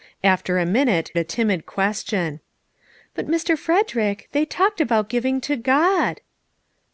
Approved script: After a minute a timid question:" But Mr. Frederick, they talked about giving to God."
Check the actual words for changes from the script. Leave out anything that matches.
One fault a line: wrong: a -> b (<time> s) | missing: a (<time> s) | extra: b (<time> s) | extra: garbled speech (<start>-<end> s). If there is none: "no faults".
no faults